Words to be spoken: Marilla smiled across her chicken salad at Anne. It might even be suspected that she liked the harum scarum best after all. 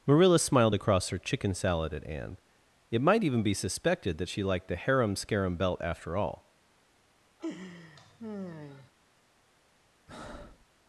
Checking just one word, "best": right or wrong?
wrong